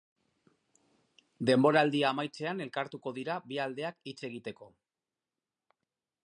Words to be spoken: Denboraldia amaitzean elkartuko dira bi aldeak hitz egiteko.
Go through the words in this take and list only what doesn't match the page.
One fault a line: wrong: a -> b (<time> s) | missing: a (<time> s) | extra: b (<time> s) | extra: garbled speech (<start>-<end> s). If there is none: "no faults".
no faults